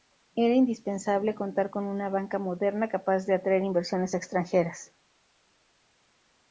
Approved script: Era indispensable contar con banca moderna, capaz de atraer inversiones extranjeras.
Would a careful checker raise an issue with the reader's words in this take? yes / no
yes